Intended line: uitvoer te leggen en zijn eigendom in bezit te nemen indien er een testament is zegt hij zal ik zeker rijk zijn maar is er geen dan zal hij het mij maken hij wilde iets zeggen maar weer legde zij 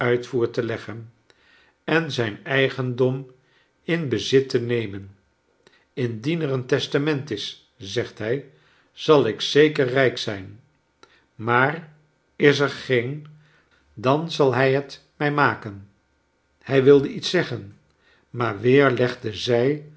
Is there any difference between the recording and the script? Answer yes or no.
no